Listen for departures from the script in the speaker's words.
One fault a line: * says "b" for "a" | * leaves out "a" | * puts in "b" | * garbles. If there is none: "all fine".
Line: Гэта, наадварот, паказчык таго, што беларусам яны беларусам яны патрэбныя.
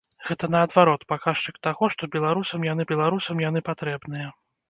all fine